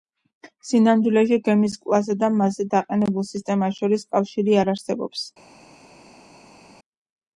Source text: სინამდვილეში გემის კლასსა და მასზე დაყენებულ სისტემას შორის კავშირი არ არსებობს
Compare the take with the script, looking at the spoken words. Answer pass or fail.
pass